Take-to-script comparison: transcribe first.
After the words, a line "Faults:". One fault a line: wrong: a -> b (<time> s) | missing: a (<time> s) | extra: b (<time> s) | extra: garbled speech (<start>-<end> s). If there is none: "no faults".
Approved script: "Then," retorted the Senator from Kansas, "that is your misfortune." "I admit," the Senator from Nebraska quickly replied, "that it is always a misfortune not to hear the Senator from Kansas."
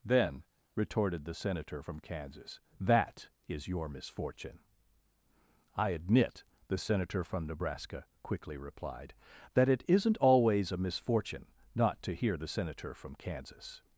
"Then," retorted the Senator from Kansas, "that is your misfortune." "I admit," the Senator from Nebraska quickly replied, "that it isn't always a misfortune not to hear the Senator from Kansas."
Faults:
wrong: is -> isn't (9.9 s)